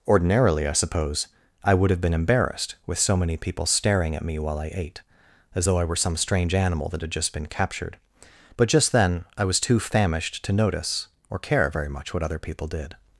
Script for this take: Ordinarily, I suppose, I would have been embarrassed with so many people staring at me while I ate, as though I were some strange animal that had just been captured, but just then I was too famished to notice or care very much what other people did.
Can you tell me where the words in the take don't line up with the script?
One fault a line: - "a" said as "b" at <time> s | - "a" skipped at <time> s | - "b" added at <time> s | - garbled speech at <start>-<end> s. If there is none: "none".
none